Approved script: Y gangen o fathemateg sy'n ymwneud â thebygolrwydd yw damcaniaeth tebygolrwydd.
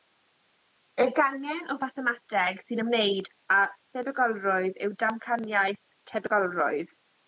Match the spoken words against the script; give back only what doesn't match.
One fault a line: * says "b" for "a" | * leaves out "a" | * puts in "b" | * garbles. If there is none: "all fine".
all fine